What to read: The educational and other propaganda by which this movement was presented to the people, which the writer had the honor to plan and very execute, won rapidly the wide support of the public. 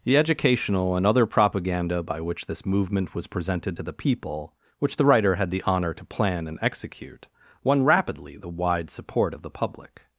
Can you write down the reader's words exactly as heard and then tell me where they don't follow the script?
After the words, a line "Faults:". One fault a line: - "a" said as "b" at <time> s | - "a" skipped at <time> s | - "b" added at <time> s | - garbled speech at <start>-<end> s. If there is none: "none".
The educational and other propaganda by which this movement was presented to the people, which the writer had the honor to plan and execute, won rapidly the wide support of the public.
Faults:
- "very" skipped at 6.6 s